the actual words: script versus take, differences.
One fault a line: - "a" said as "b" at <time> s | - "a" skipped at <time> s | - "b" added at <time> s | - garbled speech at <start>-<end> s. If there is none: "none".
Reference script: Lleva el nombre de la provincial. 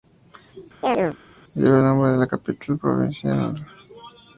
- "capital" added at 2.2 s